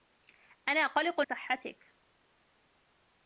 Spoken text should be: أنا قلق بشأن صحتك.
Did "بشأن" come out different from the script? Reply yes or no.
yes